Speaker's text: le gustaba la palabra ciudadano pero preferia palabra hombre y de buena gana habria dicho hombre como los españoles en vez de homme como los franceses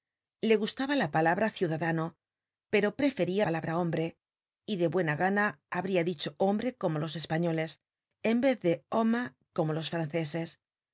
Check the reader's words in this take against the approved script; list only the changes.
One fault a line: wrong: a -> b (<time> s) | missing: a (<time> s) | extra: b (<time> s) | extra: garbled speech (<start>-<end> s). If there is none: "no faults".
no faults